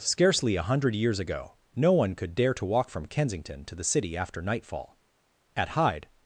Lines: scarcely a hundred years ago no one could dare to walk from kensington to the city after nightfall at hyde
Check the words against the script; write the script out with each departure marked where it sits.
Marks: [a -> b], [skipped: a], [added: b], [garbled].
scarcely a hundred years ago no one could dare to walk from kensington to the city after nightfall at hyde